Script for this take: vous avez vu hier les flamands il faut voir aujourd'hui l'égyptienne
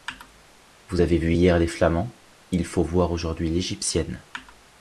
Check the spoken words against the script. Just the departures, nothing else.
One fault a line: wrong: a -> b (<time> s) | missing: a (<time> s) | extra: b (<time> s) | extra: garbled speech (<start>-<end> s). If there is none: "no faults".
no faults